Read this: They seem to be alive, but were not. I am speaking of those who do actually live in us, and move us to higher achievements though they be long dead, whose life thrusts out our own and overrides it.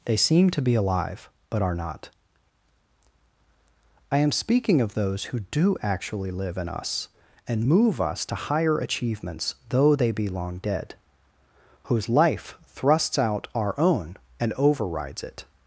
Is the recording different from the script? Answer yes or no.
yes